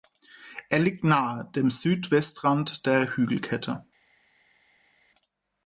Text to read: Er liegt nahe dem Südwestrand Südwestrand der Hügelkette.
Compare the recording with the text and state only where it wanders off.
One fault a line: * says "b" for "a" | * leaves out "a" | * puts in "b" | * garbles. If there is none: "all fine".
* leaves out "Südwestrand"